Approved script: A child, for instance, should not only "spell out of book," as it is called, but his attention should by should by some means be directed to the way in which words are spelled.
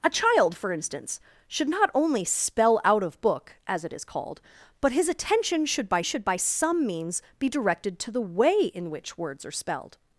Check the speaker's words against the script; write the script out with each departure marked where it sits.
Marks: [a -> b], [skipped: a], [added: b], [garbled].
A child, for instance, should not only "spell out of book," as it is called, but his attention should by should by some means be directed to the way in which words are spelled.